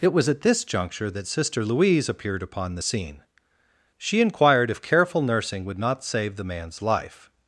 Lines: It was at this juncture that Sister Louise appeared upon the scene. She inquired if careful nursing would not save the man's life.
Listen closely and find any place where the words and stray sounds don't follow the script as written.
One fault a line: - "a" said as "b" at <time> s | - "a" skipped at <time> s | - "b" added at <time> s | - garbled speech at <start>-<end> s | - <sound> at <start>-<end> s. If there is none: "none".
none